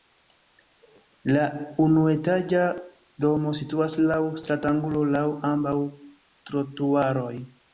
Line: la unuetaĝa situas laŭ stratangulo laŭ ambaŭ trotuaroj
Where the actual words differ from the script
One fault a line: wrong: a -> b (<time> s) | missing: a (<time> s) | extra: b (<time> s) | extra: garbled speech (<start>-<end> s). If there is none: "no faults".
extra: domo (3.2 s)